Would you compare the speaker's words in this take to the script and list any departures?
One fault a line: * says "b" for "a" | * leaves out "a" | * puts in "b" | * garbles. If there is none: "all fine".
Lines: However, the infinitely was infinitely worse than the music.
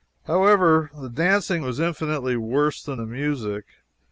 * says "dancing" for "infinitely"